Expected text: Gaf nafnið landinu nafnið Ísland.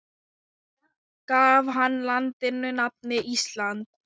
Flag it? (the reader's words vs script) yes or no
yes